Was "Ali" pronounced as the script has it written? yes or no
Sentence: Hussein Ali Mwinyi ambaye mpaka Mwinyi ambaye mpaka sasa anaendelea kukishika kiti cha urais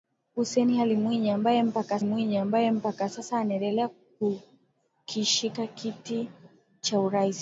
yes